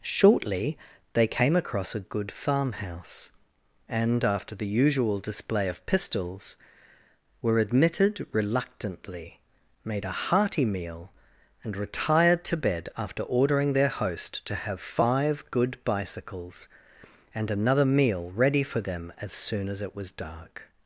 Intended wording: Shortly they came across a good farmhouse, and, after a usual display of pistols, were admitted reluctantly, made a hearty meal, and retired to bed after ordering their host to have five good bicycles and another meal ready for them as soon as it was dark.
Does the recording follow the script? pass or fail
fail